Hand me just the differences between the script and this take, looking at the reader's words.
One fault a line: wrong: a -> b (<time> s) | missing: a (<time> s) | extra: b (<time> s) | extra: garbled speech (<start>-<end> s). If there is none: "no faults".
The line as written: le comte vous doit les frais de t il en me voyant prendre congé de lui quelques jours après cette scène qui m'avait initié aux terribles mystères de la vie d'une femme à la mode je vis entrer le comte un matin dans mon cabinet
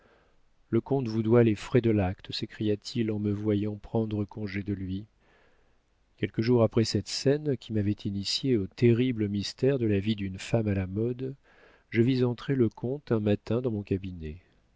extra: l'acte s'écria (1.9 s)